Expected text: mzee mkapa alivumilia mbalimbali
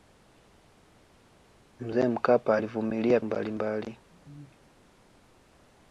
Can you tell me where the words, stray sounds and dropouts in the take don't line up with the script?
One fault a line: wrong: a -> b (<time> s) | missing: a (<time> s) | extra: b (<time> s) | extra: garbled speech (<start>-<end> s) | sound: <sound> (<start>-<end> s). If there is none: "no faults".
no faults